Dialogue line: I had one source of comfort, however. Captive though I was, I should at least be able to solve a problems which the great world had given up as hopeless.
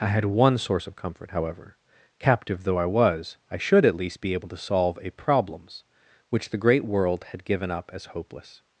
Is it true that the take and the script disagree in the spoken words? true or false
false